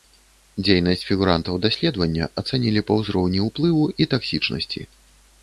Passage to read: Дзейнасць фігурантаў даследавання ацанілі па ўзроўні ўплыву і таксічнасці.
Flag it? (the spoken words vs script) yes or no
no